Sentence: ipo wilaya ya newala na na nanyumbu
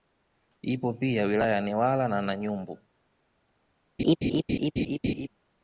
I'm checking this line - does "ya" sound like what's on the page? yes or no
yes